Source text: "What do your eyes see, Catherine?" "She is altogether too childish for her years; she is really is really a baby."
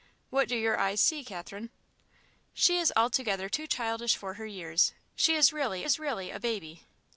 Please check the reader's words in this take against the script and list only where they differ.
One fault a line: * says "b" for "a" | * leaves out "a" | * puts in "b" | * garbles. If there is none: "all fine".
all fine